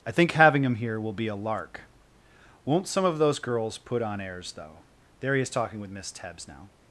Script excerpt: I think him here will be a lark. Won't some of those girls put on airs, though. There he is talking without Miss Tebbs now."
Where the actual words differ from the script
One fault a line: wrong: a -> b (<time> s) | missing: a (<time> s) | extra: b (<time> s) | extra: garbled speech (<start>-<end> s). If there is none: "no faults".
extra: having (0.3 s)
wrong: without -> with (5.8 s)